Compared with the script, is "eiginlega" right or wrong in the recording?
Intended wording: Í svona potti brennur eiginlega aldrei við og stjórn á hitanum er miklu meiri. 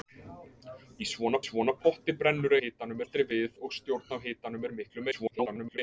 wrong